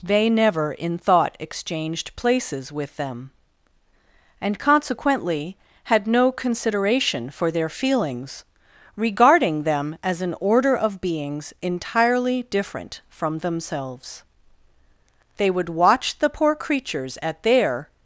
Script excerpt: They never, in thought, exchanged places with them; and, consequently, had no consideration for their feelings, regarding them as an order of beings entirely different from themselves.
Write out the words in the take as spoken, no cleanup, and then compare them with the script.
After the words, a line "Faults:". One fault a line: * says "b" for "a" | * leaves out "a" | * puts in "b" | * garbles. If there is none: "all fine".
They never, in thought, exchanged places with them; and, consequently, had no consideration for their feelings, regarding them as an order of beings entirely different from themselves. They would watch the poor creatures at their
Faults:
* puts in "They would watch the poor creatures at their"